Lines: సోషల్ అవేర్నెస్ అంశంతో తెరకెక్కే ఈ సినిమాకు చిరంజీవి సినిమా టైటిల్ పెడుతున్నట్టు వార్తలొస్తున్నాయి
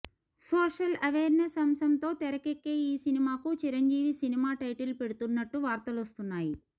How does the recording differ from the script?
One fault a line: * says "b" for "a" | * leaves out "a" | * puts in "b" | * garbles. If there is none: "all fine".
all fine